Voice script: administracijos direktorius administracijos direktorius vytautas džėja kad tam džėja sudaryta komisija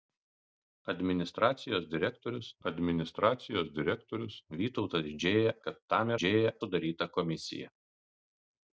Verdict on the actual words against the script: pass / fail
pass